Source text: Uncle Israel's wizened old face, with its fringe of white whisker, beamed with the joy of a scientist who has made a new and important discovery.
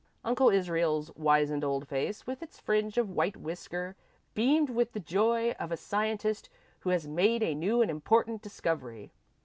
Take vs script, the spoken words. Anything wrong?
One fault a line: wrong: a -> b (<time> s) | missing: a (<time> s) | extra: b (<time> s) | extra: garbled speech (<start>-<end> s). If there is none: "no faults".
no faults